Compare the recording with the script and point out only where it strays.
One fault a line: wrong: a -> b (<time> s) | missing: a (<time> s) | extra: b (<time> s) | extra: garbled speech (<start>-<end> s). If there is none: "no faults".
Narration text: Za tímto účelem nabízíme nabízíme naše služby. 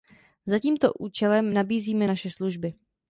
missing: nabízíme (2.1 s)